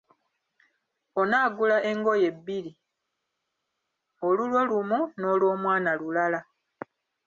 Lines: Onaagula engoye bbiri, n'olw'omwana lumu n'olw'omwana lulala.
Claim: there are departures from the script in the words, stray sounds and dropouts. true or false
true